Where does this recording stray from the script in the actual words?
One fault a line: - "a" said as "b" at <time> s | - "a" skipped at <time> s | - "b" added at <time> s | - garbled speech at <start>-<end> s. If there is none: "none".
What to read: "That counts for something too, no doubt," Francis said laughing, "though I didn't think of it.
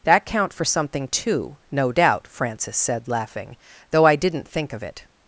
- "counts" said as "count" at 0.2 s